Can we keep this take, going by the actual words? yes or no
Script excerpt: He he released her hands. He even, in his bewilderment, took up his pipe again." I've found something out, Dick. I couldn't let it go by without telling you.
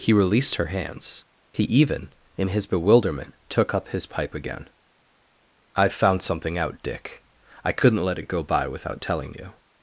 no